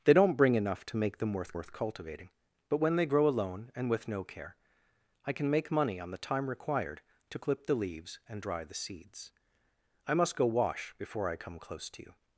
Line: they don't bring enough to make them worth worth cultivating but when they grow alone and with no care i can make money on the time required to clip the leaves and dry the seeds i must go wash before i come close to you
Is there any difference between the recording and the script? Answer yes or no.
no